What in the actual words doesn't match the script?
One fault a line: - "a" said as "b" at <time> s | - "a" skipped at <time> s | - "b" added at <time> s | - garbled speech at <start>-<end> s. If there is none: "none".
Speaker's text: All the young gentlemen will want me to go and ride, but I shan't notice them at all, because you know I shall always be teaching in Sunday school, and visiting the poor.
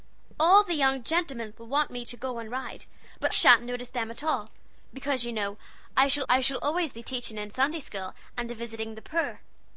- "I" skipped at 3.3 s
- "I shall" added at 6.3 s